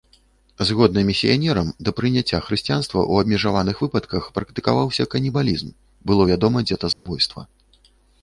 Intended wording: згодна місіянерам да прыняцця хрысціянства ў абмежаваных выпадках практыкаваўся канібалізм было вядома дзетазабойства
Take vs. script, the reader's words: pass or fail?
pass